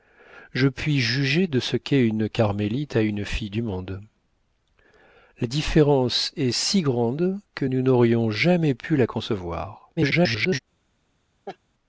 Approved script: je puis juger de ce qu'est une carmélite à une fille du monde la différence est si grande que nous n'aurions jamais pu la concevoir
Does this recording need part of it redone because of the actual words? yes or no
yes